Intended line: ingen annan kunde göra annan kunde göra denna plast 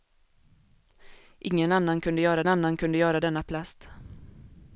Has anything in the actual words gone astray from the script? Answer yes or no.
no